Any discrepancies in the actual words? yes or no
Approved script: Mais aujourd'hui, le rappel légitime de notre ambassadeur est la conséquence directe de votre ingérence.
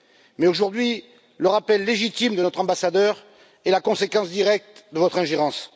no